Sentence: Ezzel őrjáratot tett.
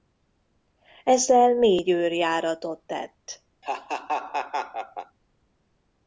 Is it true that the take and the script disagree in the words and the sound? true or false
true